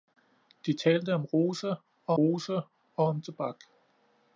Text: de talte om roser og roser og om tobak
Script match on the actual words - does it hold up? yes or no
yes